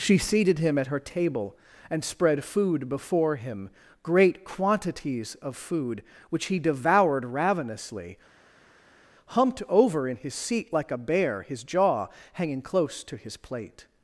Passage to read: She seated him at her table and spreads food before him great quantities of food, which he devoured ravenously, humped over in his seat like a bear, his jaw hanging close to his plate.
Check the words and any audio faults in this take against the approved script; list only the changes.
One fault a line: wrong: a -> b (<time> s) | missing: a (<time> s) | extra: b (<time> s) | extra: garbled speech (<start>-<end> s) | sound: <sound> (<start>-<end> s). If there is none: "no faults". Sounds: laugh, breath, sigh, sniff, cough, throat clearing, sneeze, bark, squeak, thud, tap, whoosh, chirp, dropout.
wrong: spreads -> spread (2.0 s)